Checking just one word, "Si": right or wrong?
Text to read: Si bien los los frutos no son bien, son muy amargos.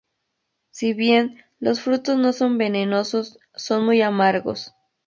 right